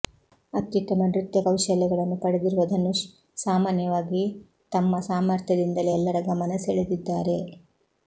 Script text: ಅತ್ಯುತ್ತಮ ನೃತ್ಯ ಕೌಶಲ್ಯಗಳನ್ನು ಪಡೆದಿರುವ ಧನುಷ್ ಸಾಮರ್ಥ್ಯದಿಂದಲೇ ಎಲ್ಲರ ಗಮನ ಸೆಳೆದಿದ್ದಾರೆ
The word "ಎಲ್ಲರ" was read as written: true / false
true